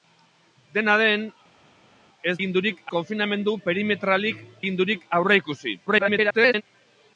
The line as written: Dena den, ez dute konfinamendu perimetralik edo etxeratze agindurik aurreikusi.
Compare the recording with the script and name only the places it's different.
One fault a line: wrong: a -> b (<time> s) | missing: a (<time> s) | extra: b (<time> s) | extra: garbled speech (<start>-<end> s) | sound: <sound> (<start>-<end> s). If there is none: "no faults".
wrong: dute -> agindurik (2.4 s)
missing: edo etxeratze (4.5 s)
extra: garbled speech (5.9-6.6 s)